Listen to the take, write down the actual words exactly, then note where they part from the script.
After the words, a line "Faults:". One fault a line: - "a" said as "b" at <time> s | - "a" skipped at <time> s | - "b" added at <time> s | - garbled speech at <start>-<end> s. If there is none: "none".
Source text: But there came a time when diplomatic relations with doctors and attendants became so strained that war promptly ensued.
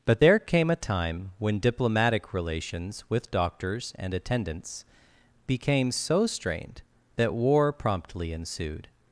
But there came a time when diplomatic relations with doctors and attendants became so strained that war promptly ensued.
Faults:
none